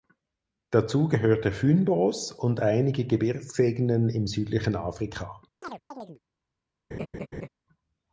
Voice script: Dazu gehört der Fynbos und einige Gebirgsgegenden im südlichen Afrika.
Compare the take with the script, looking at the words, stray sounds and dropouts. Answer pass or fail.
fail